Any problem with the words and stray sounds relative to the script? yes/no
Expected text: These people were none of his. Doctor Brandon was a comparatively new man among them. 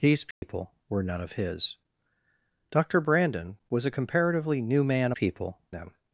yes